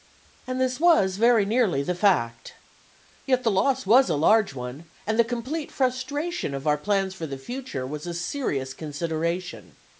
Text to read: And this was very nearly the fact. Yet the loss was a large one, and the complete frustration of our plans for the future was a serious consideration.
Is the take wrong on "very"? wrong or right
right